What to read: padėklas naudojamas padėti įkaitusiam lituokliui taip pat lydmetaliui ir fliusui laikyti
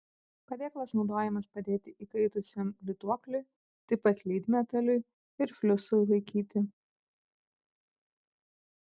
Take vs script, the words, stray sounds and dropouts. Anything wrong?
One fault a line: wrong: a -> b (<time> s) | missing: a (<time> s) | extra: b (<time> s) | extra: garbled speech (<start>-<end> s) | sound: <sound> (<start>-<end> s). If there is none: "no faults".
no faults